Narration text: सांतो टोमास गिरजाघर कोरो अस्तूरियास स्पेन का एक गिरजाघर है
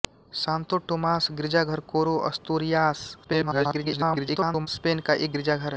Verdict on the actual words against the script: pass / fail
fail